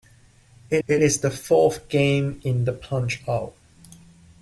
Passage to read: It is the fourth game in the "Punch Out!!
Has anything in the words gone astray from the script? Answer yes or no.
yes